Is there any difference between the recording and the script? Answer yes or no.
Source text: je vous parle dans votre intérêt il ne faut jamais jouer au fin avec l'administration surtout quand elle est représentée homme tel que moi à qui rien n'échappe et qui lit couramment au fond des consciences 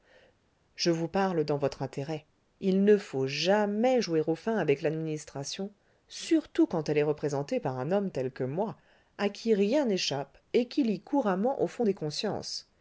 yes